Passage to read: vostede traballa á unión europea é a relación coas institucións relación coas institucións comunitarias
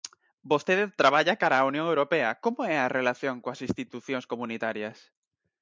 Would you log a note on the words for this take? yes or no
yes